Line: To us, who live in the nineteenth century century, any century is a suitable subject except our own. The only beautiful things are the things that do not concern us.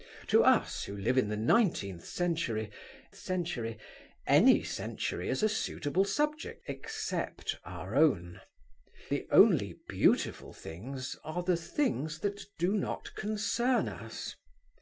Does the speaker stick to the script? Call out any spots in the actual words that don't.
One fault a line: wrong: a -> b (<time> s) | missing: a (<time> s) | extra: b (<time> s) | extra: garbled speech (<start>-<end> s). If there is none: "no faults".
no faults